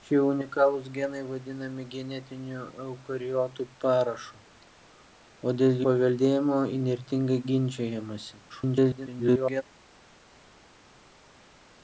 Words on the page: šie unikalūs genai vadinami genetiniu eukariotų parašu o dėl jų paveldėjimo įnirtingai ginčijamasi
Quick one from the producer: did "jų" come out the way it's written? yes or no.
no